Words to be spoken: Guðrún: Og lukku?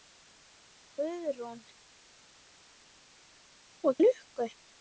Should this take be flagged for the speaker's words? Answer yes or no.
no